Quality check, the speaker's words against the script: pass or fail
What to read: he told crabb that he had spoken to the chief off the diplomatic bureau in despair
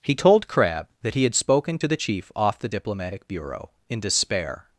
pass